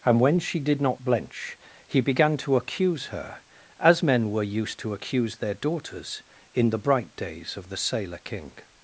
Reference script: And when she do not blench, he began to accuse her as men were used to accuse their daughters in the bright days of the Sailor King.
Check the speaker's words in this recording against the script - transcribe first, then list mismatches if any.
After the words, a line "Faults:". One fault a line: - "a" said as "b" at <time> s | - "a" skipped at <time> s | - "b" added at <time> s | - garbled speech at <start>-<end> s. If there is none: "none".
And when she did not blench, he began to accuse her as men were used to accuse their daughters in the bright days of the Sailor King.
Faults:
- "do" said as "did" at 0.6 s